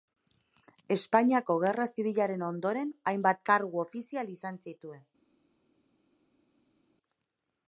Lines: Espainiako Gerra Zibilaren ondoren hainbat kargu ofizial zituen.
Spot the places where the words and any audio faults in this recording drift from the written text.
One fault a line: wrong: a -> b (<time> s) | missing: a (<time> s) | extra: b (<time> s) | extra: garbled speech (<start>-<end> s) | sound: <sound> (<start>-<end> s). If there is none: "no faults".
extra: izan (4.4 s)